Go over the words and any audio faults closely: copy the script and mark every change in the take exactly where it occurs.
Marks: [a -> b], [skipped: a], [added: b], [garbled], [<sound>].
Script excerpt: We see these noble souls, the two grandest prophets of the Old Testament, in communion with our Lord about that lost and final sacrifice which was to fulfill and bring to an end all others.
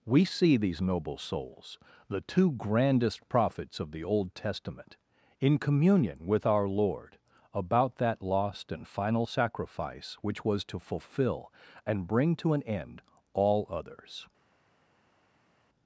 We see these noble souls, the two grandest prophets of the Old Testament, in communion with our Lord about that lost and final sacrifice which was to fulfill and bring to an end all others.